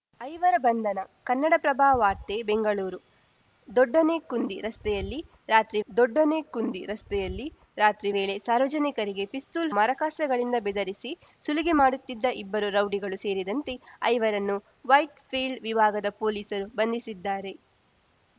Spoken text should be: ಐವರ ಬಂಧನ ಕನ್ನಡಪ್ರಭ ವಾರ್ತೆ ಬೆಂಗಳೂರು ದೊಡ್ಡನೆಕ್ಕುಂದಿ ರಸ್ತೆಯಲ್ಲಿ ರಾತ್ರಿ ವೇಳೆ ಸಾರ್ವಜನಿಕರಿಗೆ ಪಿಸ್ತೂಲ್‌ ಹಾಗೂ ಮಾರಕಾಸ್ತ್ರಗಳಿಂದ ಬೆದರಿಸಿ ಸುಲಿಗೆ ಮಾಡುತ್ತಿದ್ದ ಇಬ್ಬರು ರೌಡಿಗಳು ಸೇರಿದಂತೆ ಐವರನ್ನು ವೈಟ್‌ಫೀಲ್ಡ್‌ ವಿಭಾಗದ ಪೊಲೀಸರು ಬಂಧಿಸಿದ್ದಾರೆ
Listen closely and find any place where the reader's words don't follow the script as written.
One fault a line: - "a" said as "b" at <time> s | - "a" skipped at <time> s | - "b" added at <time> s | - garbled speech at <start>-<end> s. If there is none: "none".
- "ದೊಡ್ಡನೆಕ್ಕುಂದಿ ರಸ್ತೆಯಲ್ಲಿ ರಾತ್ರಿ" added at 5.9 s
- "ಹಾಗೂ" skipped at 9.7 s